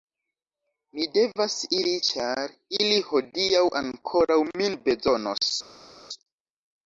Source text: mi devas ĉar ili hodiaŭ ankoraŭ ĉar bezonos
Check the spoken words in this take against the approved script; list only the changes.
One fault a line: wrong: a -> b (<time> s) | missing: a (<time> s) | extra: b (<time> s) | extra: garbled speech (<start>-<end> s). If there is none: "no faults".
extra: iri (1.8 s)
wrong: ĉar -> min (4.5 s)